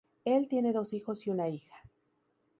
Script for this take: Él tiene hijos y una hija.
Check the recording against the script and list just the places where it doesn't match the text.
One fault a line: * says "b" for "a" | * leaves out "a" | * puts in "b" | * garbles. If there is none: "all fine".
* puts in "dos"